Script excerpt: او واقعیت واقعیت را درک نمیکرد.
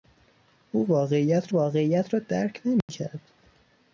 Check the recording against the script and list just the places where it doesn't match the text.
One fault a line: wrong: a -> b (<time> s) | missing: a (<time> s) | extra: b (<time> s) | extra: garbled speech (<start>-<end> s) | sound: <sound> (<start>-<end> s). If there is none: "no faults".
sound: dropout (2.8-2.9 s)